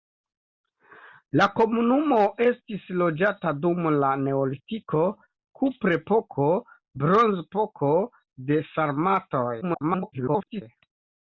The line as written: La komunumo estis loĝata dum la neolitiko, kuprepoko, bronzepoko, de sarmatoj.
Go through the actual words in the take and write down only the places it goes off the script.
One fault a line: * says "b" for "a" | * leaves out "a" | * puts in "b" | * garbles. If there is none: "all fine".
* garbles